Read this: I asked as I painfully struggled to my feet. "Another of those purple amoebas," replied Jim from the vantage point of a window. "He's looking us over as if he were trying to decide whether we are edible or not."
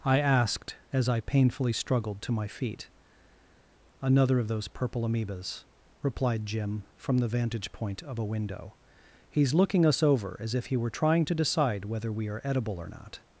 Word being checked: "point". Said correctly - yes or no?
yes